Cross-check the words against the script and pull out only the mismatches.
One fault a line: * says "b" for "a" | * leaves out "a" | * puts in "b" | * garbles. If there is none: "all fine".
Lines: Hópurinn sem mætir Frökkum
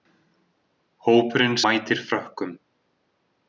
* leaves out "sem"